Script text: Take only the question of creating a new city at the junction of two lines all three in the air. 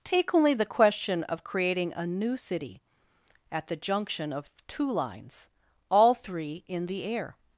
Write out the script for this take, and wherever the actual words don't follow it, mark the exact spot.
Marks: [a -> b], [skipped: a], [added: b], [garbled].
Take only the question of creating a new city at the junction of two lines all three in the air.